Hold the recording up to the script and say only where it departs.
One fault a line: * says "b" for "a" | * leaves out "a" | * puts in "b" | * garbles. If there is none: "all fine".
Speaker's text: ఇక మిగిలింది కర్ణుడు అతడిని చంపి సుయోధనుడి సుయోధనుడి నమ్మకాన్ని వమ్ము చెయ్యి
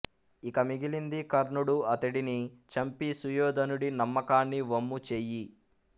* leaves out "సుయోధనుడి"